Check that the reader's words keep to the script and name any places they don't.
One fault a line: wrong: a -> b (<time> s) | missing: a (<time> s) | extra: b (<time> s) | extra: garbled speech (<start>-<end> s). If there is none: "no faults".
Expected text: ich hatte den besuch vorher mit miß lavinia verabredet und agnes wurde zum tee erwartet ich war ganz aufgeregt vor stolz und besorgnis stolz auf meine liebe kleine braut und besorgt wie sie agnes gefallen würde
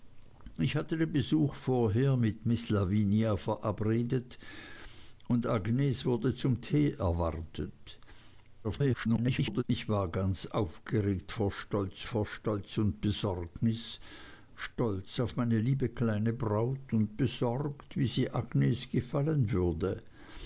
extra: garbled speech (8.6-9.6 s)
extra: vor stolz (12.1 s)